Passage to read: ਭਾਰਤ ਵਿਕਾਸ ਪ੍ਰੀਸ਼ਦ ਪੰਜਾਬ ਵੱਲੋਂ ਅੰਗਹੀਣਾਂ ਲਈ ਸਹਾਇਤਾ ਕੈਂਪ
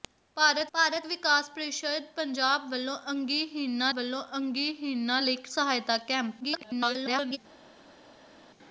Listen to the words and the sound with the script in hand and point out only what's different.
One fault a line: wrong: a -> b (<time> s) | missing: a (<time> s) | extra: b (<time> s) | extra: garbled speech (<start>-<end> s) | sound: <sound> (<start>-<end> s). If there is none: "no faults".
extra: ਭਾਰਤ (0.7 s)
extra: ਵੱਲੋਂ ਅੰਗਹੀਣਾਂ (4.0 s)
extra: garbled speech (6.4-7.4 s)